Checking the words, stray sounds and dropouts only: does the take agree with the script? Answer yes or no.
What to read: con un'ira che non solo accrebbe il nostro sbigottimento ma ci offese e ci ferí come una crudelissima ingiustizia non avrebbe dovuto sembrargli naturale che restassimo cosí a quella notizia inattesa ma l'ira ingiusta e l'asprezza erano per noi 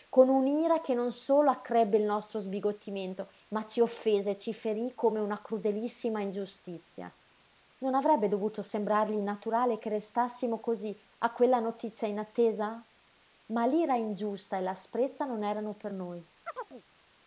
no